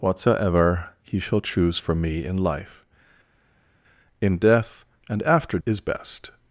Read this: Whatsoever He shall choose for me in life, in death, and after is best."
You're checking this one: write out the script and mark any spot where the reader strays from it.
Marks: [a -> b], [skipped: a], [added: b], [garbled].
Whatsoever He shall choose for me in life, in death, and after is best."